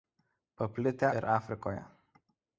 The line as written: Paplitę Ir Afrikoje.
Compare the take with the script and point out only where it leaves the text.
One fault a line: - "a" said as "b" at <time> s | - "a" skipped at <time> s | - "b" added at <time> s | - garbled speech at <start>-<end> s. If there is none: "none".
none